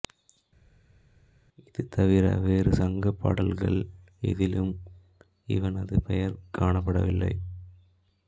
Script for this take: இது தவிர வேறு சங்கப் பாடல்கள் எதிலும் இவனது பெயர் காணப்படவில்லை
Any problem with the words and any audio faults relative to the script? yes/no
no